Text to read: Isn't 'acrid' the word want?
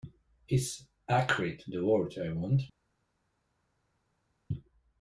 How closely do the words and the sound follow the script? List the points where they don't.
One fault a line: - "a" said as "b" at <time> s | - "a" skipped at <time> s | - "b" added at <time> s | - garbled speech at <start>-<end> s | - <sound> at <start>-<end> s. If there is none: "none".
- "Isn't" said as "Is" at 0.5 s
- "I" added at 2.2 s